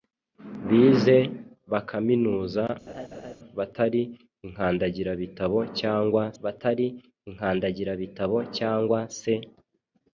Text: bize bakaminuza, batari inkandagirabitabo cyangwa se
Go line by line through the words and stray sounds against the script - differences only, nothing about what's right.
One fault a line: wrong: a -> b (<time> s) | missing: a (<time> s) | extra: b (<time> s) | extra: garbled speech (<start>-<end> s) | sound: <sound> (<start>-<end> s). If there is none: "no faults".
sound: laugh (2.9-3.4 s)
extra: batari inkandagirabitabo cyangwa (6.4 s)